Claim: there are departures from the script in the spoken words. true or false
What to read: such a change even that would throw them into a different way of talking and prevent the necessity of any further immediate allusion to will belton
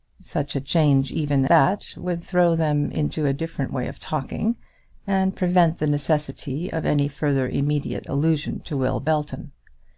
false